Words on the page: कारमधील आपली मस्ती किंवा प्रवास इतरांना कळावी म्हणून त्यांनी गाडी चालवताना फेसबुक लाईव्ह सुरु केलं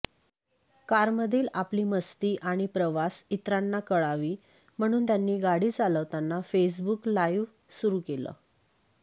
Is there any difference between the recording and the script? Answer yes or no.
yes